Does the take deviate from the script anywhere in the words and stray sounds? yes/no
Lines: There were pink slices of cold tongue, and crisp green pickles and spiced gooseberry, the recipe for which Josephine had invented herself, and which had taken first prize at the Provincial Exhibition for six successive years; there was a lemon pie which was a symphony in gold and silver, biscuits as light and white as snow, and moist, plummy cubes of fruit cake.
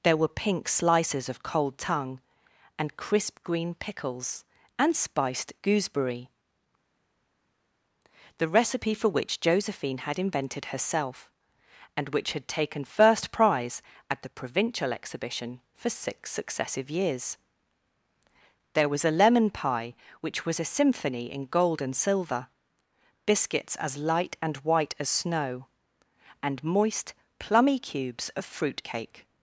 no